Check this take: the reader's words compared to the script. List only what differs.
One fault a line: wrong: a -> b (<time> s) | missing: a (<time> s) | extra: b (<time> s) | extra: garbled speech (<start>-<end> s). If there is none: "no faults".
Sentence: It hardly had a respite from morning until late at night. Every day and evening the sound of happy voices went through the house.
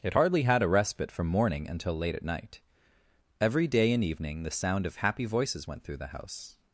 no faults